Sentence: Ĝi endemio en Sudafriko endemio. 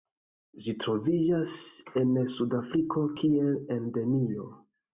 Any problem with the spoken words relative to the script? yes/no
yes